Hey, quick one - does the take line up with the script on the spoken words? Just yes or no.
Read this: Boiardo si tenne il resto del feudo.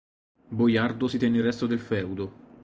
yes